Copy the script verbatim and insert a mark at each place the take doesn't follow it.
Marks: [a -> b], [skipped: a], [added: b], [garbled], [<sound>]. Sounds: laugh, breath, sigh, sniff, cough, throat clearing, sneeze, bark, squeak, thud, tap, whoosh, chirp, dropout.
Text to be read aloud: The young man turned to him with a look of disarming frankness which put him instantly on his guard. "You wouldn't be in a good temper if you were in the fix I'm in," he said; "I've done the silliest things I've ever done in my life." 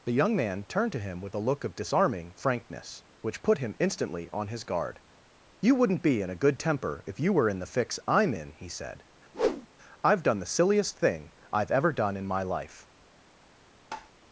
The young man turned to him with a look of disarming frankness which put him instantly on his guard. "You wouldn't be in a good temper if you were in the fix I'm in," he said; [whoosh] "I've done the silliest [things -> thing] I've ever done in my life." [tap]